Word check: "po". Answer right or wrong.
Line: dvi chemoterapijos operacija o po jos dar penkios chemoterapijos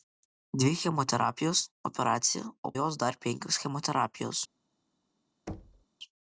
wrong